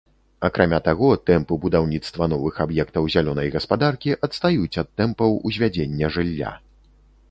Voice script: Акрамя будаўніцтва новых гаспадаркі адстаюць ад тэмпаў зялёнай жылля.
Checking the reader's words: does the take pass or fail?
fail